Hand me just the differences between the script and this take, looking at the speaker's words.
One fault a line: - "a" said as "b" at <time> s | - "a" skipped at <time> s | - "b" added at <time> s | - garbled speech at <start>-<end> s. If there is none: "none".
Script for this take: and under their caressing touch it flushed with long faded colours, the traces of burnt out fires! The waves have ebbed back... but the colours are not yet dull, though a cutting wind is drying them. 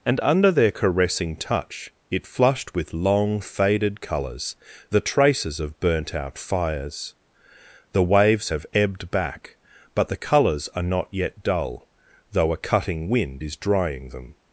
none